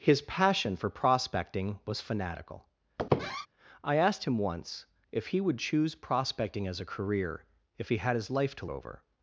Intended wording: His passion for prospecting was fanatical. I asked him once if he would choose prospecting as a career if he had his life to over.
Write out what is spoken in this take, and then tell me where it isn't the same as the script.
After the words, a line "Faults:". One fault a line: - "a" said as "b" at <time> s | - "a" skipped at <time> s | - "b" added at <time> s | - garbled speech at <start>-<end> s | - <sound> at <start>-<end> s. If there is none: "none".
His passion for prospecting was fanatical. I asked him once if he would choose prospecting as a career if he had his life to over.
Faults:
- squeak at 3.0-3.5 s